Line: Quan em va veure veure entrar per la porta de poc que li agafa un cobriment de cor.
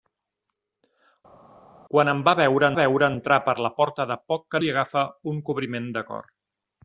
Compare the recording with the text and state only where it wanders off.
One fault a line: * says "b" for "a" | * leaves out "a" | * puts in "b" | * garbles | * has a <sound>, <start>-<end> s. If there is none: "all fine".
all fine